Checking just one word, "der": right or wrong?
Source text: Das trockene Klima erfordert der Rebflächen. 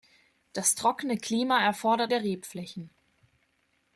right